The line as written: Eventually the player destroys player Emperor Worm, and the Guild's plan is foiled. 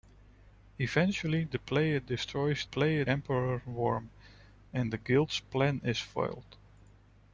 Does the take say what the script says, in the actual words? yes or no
yes